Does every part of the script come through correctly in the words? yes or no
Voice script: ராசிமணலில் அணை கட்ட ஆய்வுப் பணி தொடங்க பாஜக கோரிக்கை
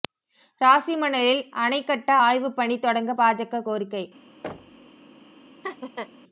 yes